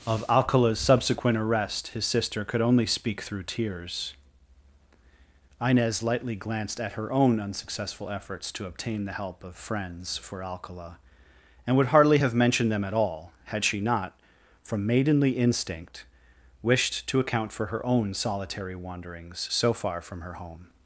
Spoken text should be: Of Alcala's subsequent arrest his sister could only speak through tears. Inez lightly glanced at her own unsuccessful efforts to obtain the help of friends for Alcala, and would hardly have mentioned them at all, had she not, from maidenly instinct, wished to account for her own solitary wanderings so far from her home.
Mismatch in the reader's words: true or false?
false